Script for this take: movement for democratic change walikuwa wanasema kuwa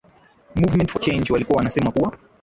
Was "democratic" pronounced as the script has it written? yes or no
no